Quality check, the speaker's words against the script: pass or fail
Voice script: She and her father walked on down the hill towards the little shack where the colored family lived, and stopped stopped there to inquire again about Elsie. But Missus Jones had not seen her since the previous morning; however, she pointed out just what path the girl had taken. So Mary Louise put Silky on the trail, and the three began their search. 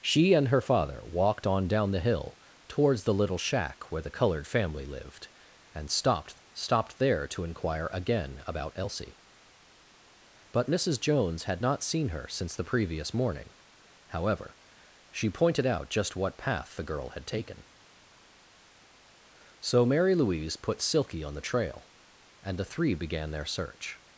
pass